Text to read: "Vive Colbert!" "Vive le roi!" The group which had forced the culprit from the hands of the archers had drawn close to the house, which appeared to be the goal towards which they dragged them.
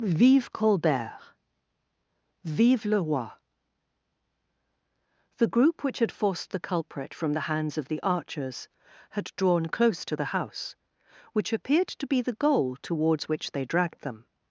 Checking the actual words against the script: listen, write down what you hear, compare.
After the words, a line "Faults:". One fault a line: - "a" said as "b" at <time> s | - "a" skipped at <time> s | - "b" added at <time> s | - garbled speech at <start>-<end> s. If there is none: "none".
"Vive Colbert!" "Vive le roi!" The group which had forced the culprit from the hands of the archers had drawn close to the house, which appeared to be the goal towards which they dragged them.
Faults:
none